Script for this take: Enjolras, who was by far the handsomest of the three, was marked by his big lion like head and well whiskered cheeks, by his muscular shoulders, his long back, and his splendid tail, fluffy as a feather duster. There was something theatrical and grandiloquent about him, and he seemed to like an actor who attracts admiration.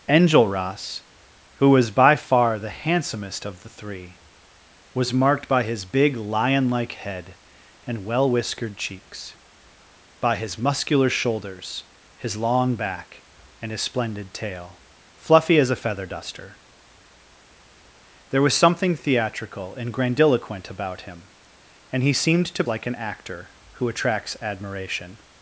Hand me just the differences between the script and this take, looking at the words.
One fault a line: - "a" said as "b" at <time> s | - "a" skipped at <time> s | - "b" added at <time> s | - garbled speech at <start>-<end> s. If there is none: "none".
none